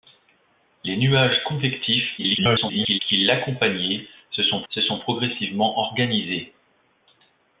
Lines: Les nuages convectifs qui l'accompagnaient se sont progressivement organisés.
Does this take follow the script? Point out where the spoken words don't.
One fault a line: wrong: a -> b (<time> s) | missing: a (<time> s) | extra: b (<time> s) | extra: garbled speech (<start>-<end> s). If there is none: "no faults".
extra: garbled speech (2.2-3.0 s)
extra: se sont (4.7 s)